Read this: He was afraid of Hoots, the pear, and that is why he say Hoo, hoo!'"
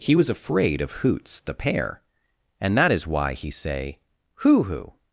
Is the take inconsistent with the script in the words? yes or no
no